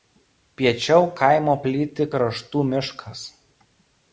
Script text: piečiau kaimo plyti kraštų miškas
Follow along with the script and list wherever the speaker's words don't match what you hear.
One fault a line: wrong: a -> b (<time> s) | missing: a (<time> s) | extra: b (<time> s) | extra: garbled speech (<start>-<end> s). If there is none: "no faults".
no faults